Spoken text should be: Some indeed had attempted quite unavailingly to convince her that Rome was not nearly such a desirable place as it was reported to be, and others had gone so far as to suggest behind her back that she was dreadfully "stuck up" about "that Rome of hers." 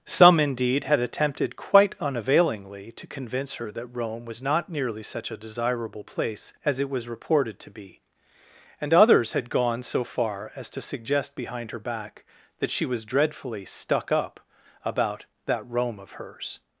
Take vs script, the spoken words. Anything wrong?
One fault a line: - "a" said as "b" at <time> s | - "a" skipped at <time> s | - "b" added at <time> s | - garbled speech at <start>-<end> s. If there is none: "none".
none